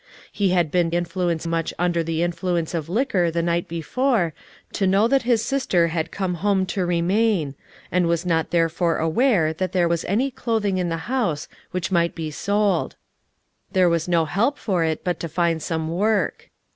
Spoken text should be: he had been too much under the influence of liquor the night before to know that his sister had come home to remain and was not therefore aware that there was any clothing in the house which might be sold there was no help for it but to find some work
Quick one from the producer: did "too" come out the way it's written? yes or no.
no